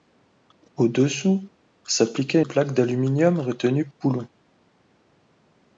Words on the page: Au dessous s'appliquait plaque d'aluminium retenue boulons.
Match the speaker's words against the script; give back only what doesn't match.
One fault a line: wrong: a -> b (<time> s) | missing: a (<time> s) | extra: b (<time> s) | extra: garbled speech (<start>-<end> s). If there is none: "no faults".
no faults